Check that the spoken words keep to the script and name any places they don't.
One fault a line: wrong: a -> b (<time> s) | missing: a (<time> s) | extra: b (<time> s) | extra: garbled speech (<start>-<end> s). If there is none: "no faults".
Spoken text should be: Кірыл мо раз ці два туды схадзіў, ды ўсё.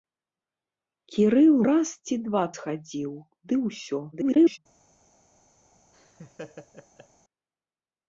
missing: мо (1.6 s)
missing: туды (2.4 s)
extra: garbled speech (4.1-4.6 s)